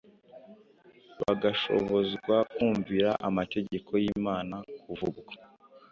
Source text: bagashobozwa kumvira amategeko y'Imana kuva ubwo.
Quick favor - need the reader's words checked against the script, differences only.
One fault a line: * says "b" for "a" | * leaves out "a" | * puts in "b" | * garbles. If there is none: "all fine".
all fine